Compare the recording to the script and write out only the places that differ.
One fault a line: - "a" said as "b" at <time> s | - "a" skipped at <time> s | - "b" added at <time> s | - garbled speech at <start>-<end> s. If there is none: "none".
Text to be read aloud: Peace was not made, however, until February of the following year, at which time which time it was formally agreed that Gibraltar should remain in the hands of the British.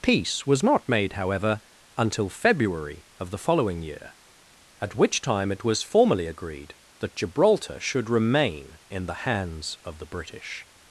- "which time" skipped at 5.5 s